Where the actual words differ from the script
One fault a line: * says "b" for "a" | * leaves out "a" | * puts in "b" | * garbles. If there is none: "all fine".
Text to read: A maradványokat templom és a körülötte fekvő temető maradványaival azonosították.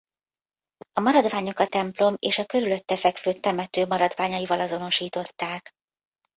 all fine